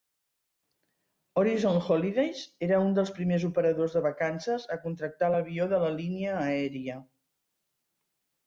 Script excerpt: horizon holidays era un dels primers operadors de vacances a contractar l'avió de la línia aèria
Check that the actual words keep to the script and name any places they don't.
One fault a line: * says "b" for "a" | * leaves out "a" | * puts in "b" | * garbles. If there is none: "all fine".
all fine